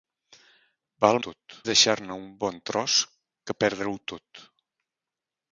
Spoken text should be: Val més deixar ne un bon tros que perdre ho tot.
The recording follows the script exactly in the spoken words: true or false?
false